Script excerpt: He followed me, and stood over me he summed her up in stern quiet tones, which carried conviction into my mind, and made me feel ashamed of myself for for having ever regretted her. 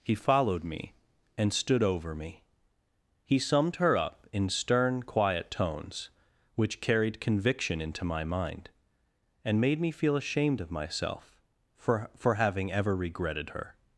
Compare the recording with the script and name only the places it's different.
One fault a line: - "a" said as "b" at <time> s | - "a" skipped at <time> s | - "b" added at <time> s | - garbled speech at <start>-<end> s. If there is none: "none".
none